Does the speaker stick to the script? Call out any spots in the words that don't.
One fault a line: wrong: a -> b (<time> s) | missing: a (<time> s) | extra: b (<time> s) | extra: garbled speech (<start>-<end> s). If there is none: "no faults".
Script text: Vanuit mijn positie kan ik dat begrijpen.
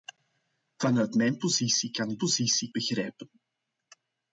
wrong: dat -> positie (2.2 s)